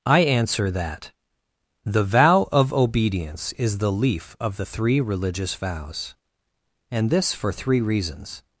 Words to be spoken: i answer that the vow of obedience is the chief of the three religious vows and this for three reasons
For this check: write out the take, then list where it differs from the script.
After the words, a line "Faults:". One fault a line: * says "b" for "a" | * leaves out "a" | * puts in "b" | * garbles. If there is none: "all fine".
i answer that the vow of obedience is the leaf of the three religious vows and this for three reasons
Faults:
* says "leaf" for "chief"